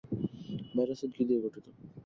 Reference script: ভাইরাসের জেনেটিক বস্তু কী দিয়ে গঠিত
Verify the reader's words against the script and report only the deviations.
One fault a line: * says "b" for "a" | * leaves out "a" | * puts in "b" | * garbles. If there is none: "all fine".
* leaves out "জেনেটিক বস্তু"